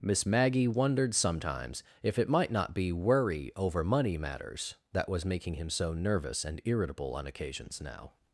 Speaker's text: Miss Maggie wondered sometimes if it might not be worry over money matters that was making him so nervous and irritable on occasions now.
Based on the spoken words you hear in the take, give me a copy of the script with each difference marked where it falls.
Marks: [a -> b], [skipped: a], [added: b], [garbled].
Miss Maggie wondered sometimes if it might not be worry over money matters that was making him so nervous and irritable on occasions now.